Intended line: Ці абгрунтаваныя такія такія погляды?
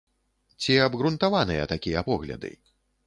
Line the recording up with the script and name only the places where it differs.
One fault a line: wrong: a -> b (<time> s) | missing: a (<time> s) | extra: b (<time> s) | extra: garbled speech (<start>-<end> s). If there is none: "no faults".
missing: такія (2.0 s)